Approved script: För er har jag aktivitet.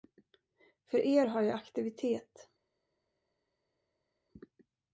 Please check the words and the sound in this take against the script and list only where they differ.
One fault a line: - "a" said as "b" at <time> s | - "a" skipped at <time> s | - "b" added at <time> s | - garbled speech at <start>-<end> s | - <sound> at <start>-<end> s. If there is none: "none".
none